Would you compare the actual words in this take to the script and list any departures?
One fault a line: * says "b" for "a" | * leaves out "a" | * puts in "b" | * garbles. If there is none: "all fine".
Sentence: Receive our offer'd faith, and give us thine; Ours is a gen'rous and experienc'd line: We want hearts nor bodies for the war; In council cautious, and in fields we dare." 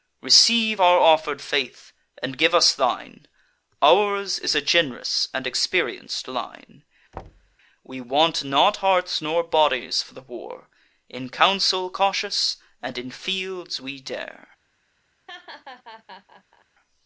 * puts in "not"